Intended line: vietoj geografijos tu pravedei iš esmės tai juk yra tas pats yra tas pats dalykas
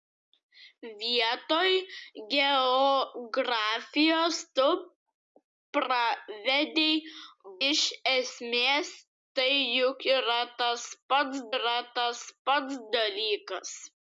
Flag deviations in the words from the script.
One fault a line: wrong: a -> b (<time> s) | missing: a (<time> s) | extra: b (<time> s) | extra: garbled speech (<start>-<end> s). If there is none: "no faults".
no faults